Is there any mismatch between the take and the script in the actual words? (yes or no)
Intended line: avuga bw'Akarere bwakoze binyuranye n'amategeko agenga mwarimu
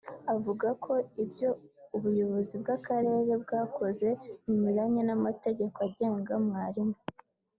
yes